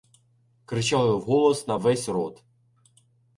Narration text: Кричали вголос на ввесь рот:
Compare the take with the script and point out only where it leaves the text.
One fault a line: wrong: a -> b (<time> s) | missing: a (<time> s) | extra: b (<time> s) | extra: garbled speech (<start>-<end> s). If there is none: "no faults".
no faults